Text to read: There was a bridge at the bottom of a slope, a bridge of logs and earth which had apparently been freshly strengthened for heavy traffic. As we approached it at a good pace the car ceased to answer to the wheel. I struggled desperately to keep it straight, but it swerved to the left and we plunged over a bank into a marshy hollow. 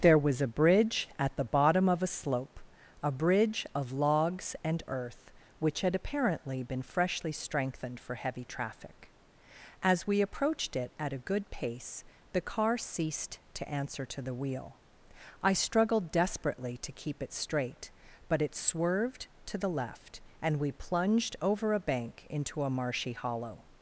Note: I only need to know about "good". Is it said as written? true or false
true